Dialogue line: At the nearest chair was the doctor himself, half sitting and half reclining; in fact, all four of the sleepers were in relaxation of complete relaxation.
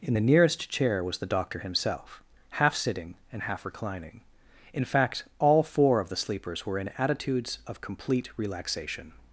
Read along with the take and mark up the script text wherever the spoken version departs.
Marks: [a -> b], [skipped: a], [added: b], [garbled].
[At -> In] the nearest chair was the doctor himself, half sitting and half reclining; in fact, all four of the sleepers were in [relaxation -> attitudes] of complete relaxation.